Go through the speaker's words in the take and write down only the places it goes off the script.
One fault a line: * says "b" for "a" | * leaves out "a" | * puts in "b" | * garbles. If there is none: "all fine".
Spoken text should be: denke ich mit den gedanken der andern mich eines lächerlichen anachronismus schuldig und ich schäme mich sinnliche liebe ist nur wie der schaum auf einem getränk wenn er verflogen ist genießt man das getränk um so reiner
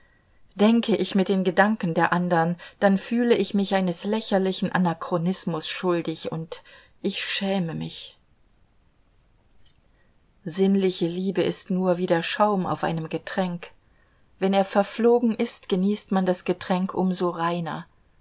* puts in "dann fühle ich"